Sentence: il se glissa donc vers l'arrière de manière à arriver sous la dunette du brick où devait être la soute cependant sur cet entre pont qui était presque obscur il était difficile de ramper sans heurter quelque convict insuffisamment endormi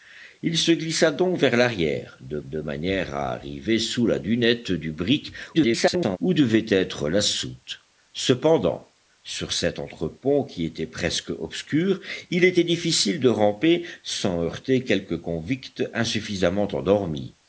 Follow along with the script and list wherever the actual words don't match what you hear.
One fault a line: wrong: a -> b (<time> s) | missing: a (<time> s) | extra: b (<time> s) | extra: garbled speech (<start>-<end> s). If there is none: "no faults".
extra: de (2.4 s)
extra: garbled speech (5.5-6.2 s)